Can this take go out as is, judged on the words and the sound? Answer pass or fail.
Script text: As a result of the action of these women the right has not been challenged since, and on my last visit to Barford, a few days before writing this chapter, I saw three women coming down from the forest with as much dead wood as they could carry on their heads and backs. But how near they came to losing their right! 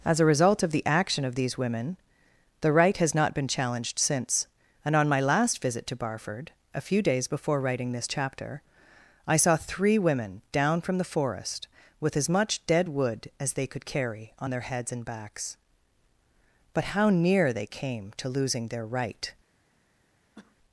fail